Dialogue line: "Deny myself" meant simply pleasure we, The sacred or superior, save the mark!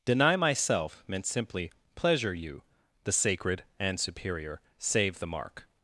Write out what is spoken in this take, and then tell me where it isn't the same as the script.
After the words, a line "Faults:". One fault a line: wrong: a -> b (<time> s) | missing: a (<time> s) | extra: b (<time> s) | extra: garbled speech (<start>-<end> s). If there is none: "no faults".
"Deny myself" meant simply pleasure you, The sacred and superior, save the mark!
Faults:
wrong: we -> you (2.3 s)
wrong: or -> and (3.8 s)